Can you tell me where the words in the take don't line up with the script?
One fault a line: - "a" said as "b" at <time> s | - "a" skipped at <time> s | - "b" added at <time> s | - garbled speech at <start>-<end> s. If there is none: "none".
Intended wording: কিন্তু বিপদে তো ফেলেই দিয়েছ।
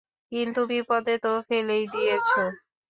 none